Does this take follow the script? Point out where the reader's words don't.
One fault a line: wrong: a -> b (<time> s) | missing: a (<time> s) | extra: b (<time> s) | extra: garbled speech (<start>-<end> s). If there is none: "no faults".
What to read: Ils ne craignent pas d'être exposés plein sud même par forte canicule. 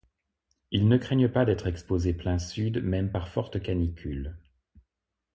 no faults